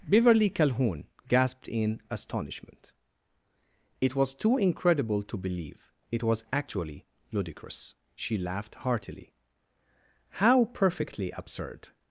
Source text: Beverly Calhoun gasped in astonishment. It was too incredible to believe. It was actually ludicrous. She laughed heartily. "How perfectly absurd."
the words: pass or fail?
pass